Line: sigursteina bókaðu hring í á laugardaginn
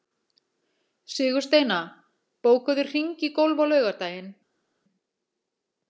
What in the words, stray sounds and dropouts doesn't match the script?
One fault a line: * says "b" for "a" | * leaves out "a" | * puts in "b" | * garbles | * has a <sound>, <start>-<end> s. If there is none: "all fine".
* puts in "golf"